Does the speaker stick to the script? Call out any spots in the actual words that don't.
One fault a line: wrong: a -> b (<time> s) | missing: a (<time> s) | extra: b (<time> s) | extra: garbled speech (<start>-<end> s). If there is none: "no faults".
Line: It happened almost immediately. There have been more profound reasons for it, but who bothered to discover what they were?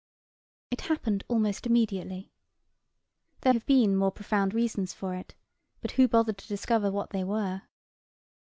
no faults